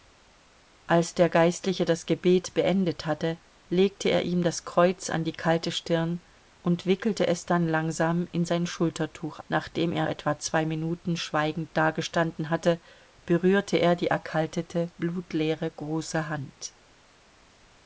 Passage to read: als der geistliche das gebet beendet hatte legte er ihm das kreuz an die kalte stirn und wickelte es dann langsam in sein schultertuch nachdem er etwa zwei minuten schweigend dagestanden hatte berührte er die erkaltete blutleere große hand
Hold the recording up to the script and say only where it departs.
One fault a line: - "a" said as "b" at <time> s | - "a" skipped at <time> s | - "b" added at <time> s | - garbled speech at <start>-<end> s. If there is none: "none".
none